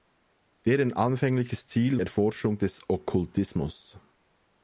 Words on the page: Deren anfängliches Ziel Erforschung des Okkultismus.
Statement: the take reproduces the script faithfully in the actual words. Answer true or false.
true